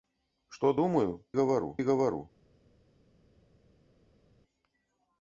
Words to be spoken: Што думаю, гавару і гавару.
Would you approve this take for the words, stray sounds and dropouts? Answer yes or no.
yes